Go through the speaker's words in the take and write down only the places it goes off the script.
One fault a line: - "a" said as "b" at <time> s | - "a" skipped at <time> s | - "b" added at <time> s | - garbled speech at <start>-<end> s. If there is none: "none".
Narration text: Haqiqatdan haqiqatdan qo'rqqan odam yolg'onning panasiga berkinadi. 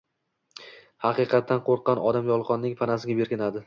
- "haqiqatdan" skipped at 1.6 s